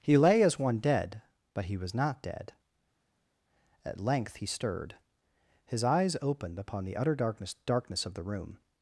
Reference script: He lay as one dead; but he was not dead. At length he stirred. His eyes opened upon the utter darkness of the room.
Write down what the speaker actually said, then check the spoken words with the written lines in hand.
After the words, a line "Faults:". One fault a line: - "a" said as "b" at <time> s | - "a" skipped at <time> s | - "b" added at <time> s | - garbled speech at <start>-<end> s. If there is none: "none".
He lay as one dead; but he was not dead. At length he stirred. His eyes opened upon the utter darkness darkness of the room.
Faults:
- "darkness" added at 7.7 s